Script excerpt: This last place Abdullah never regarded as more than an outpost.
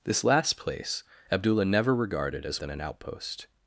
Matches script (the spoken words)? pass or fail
fail